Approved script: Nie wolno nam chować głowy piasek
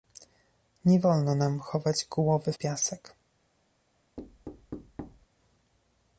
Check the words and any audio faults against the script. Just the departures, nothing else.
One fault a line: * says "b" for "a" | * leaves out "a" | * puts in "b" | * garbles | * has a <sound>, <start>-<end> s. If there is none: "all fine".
* has a thud, 4.2-5.3 s